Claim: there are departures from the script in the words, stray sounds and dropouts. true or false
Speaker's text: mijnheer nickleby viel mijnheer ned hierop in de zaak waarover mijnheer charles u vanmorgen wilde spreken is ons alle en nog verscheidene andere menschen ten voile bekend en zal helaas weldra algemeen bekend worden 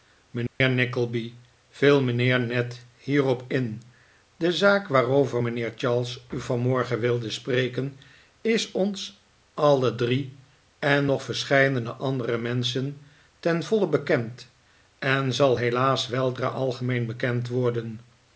true